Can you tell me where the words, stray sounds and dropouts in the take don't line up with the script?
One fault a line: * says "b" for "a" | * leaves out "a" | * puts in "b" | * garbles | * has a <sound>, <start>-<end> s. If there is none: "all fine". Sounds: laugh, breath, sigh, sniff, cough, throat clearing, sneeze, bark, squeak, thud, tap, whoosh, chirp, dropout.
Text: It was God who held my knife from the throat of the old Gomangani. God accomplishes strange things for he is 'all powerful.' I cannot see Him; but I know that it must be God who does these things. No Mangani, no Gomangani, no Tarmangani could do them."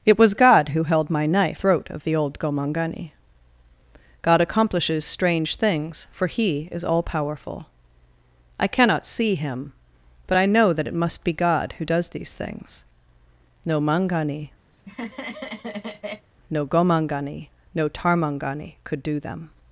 * leaves out "from the"
* has a laugh, 14.7-16.3 s